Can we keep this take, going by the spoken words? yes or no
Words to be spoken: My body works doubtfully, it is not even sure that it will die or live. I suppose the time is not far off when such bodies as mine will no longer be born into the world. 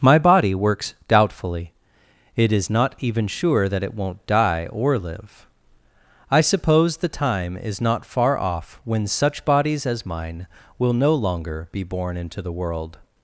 no